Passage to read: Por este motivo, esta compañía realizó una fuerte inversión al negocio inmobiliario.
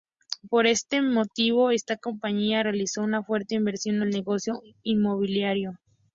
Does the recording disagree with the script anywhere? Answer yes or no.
no